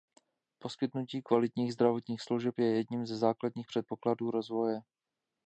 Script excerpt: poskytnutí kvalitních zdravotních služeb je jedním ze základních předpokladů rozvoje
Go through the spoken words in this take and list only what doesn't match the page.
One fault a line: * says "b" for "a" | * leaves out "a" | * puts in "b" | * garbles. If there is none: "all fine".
all fine